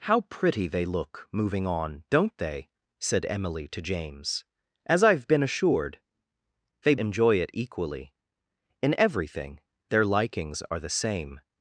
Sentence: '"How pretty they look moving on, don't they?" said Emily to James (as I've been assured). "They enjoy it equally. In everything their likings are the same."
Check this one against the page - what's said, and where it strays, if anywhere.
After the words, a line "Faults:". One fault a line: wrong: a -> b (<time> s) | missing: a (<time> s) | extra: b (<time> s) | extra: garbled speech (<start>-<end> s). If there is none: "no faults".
'"How pretty they look moving on, don't they?" said Emily to James (as I've been assured). "They enjoy it equally. In everything their likings are the same."
Faults:
no faults